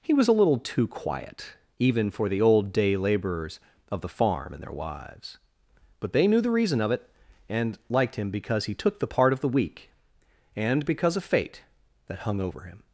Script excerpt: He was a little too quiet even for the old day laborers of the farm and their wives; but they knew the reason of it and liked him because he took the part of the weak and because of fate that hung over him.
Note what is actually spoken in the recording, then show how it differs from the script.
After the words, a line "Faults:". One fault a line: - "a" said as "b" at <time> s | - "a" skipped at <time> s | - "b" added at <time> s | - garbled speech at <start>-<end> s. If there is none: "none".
He was a little too quiet even for the old day laborers of the farm and their wives; but they knew the reason of it and liked him because he took the part of the weak and because of fate that hung over him.
Faults:
none